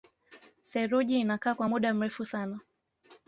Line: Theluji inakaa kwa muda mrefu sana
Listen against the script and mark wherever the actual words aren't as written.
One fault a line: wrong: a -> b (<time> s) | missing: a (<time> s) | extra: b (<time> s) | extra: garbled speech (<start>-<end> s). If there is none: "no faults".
no faults